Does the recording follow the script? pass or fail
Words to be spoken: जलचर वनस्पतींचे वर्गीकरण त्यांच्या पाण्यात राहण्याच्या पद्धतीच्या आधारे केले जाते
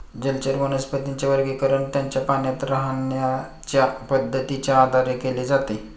pass